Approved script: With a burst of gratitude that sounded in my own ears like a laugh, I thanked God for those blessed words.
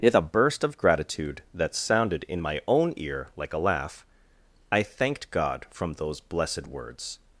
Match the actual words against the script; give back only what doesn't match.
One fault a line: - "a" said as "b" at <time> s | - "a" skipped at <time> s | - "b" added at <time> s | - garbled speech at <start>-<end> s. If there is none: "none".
- "ears" said as "ear" at 3.0 s
- "for" said as "from" at 5.7 s